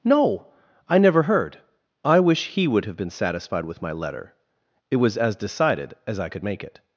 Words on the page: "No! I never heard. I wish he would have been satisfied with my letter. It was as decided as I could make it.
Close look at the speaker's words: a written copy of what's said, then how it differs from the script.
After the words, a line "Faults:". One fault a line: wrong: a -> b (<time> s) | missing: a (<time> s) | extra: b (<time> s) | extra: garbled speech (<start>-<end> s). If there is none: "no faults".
"No! I never heard. I wish he would have been satisfied with my letter. It was as decided as I could make it.
Faults:
no faults